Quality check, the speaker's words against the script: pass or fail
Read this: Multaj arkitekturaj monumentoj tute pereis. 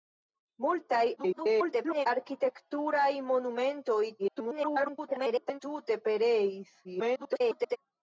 fail